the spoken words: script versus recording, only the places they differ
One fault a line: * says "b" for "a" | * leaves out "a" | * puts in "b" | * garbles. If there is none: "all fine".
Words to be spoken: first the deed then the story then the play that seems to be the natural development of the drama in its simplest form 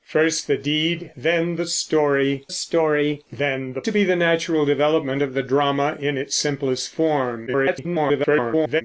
* puts in "story"
* leaves out "play that seems"
* garbles